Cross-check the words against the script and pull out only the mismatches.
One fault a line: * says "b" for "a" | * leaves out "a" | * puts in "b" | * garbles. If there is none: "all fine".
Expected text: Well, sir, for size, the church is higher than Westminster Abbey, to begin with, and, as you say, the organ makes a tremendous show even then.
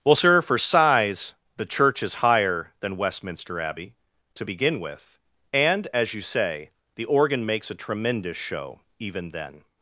all fine